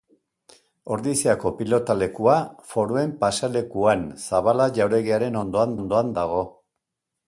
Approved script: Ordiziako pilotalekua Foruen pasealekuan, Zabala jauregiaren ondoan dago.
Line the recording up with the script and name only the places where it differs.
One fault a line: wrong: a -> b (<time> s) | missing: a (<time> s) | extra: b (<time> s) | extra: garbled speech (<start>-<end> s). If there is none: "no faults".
extra: ondoan (5.8 s)